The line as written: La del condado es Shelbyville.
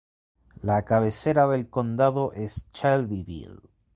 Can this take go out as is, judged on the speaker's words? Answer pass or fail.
fail